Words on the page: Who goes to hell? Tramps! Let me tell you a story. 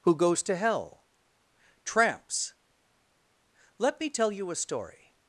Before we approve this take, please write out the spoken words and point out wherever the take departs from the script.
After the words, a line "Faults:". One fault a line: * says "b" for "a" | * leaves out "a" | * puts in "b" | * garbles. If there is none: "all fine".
Who goes to hell? Tramps! Let me tell you a story.
Faults:
all fine